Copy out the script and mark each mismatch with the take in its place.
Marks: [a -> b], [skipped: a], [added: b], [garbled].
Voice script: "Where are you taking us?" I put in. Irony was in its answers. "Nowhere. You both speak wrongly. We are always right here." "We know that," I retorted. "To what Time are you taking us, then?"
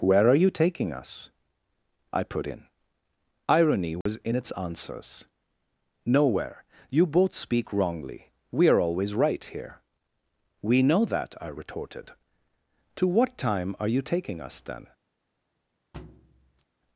"Where are you taking us?" I put in. Irony was in its answers. "Nowhere. You both speak wrongly. We are always right here." "We know that," I retorted. "To what Time are you taking us, then?"